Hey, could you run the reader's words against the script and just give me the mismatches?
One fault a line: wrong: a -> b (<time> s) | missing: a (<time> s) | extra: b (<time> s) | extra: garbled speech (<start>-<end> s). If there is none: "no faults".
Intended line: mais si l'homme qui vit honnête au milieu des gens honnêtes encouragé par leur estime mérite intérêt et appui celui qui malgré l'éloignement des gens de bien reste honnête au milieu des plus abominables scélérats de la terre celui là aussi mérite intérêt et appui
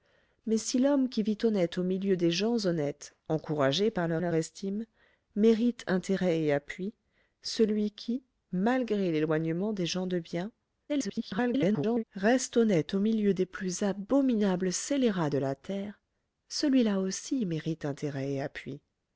extra: leur (4.2 s)
extra: garbled speech (10.9-12.0 s)